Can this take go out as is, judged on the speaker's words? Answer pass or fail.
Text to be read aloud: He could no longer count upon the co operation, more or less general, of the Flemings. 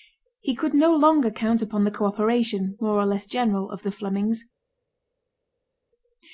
pass